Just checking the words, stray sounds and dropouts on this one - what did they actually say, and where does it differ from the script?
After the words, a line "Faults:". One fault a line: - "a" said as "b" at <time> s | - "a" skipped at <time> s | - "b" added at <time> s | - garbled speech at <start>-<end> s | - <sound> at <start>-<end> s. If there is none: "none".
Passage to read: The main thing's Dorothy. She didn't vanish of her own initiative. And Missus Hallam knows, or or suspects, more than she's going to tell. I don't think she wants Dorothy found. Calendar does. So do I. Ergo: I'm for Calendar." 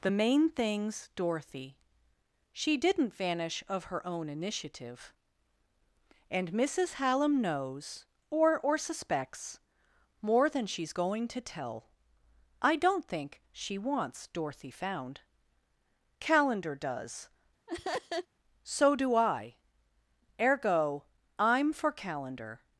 The main thing's Dorothy. She didn't vanish of her own initiative. And Missus Hallam knows, or or suspects, more than she's going to tell. I don't think she wants Dorothy found. Calendar does. So do I. Ergo: I'm for Calendar."
Faults:
- laugh at 17.7-18.3 s